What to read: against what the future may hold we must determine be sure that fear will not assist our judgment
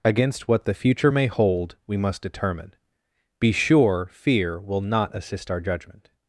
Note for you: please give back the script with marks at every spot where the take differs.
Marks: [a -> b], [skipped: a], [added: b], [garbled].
against what the future may hold we must determine be sure [skipped: that] fear will not assist our judgment